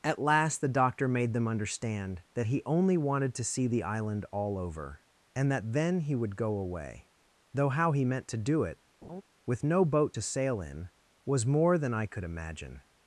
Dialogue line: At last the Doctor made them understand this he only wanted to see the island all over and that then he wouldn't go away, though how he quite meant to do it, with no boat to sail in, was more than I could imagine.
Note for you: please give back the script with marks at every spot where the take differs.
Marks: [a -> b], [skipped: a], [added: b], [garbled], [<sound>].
At last the Doctor made them understand [this -> that] he only wanted to see the island all over and that then he [wouldn't -> would] go away, though how he [skipped: quite] meant to do it, [laugh] with no boat to sail in, was more than I could imagine.